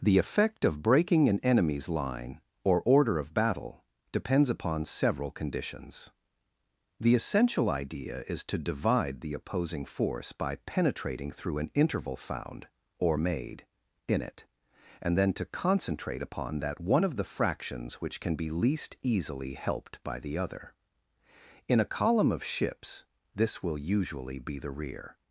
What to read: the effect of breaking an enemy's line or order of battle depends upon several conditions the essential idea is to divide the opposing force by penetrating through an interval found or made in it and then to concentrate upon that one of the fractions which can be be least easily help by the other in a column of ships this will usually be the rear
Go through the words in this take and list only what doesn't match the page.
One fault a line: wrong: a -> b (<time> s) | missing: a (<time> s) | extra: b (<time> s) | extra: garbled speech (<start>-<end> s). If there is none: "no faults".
missing: be (18.5 s)
wrong: help -> helped (19.5 s)